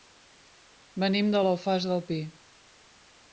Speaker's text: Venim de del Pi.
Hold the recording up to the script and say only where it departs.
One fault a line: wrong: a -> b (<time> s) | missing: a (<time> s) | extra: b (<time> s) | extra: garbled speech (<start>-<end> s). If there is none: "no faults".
extra: l'Alfàs (1.5 s)